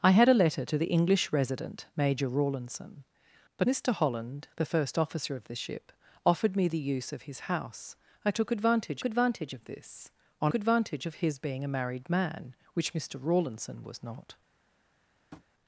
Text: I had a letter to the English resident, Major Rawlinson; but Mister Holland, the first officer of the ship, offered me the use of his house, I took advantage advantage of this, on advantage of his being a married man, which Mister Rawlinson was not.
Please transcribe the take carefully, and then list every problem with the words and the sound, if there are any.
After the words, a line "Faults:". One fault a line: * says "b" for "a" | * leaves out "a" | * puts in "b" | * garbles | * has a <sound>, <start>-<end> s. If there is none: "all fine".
I had a letter to the English resident, Major Rawlinson; but Mister Holland, the first officer of the ship, offered me the use of his house, I took advantage advantage of this, on advantage of his being a married man, which Mister Rawlinson was not.
Faults:
* has a tap, 15.3-15.5 s